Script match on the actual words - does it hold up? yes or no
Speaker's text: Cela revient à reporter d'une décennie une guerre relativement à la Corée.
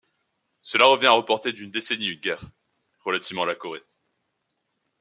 yes